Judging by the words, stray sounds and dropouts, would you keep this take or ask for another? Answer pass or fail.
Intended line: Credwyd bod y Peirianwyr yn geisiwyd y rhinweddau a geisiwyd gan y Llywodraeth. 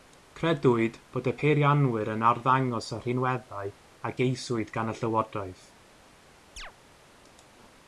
fail